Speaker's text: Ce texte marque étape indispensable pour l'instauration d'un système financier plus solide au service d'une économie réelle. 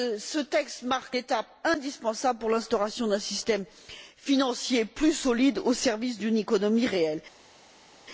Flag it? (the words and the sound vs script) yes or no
no